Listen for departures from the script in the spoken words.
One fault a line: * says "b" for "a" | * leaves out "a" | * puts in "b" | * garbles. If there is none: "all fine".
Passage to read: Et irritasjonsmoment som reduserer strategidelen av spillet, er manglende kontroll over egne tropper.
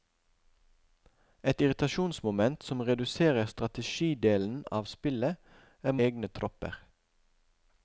* leaves out "manglende kontroll over"